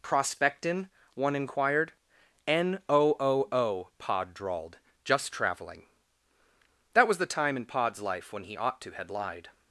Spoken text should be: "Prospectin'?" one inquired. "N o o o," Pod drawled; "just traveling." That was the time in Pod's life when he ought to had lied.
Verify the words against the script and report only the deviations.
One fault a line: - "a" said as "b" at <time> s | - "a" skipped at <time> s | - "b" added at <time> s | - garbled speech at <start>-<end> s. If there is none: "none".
none